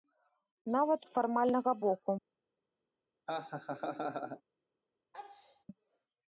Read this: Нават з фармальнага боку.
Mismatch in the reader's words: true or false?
false